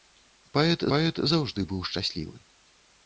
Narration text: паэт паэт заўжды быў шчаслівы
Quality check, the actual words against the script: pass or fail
pass